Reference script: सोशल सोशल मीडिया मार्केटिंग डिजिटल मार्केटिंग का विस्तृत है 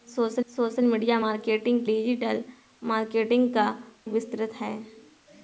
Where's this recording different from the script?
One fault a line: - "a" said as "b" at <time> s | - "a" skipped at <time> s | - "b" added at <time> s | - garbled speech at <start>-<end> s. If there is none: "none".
none